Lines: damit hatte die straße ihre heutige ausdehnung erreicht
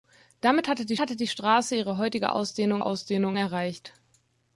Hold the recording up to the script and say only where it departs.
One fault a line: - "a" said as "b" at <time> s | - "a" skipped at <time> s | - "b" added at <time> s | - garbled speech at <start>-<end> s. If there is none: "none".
- "hatte die" added at 1.0 s
- "ausdehnung" added at 2.8 s